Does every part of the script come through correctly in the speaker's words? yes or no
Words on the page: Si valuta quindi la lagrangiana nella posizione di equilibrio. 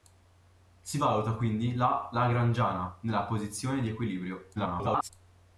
no